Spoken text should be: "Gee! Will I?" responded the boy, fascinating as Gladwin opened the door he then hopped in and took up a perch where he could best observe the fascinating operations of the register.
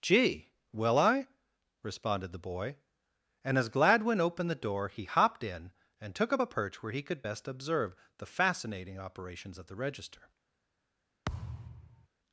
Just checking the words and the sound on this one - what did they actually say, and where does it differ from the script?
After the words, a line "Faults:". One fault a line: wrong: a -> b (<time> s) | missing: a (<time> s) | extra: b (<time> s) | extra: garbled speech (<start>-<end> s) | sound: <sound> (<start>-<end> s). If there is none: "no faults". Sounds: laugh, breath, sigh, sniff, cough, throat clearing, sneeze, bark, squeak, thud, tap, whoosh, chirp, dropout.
"Gee! Will I?" responded the boy, and as Gladwin opened the door he hopped in and took up a perch where he could best observe the fascinating operations of the register.
Faults:
wrong: fascinating -> and (3.4 s)
missing: then (5.0 s)
sound: thud (11.2-12.1 s)